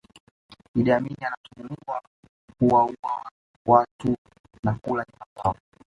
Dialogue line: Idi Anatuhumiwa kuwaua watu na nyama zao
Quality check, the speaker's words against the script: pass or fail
fail